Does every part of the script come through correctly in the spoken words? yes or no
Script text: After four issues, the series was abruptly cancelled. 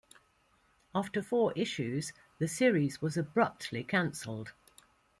yes